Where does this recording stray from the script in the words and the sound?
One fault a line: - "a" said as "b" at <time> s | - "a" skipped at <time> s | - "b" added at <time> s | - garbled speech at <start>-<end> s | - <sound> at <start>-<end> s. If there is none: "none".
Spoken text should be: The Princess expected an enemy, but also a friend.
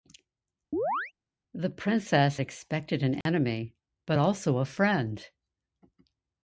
- chirp at 0.7-1.1 s
- dropout at 3.2-3.3 s